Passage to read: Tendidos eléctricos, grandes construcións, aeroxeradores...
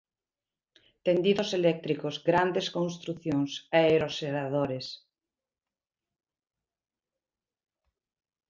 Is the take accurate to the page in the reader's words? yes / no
yes